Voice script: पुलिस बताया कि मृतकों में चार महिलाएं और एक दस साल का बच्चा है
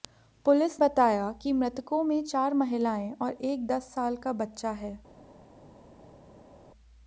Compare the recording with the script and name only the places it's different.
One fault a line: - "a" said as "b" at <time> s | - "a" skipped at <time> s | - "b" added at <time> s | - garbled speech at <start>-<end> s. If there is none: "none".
none